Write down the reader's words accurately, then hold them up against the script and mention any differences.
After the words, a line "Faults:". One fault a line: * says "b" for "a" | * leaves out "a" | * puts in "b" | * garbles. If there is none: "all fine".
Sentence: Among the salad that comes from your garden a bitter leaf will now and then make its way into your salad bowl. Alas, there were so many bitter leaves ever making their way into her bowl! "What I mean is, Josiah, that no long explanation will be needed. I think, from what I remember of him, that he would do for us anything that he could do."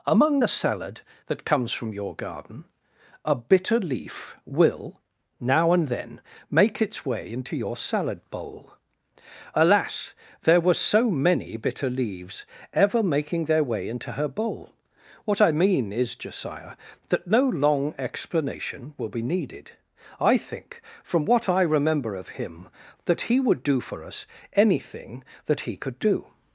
Among the salad that comes from your garden a bitter leaf will now and then make its way into your salad bowl. Alas, there were so many bitter leaves ever making their way into her bowl! "What I mean is, Josiah, that no long explanation will be needed. I think, from what I remember of him, that he would do for us anything that he could do."
Faults:
all fine